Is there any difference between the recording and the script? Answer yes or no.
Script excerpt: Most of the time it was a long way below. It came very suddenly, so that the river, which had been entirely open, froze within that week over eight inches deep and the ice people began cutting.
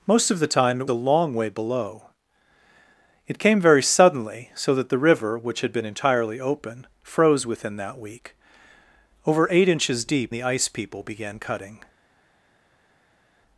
yes